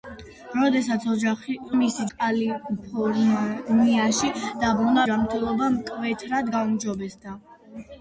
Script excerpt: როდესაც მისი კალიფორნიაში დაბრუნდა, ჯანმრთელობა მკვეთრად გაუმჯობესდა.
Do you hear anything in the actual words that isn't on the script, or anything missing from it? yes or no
no